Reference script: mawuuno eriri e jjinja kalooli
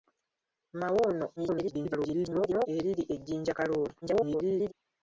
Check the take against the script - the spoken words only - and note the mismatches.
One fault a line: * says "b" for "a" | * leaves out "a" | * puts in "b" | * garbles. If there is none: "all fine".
* garbles
* garbles